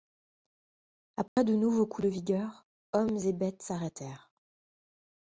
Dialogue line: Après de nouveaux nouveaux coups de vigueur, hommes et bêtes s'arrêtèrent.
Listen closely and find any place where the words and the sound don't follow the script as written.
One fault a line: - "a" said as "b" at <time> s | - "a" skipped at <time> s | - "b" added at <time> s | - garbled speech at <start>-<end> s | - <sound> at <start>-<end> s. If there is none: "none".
- dropout at 1.3-1.4 s
- "nouveaux" skipped at 1.9 s